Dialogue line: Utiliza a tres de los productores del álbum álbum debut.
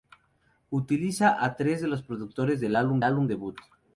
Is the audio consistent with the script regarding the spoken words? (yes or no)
yes